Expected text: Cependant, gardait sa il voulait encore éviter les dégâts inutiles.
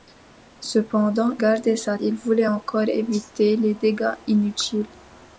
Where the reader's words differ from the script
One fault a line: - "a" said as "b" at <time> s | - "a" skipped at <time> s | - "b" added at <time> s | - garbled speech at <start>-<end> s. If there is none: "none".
none